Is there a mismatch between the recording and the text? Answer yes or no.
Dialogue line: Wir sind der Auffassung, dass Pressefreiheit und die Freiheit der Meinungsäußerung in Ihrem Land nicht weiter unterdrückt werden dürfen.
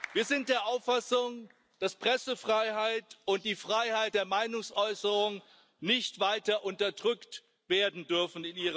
no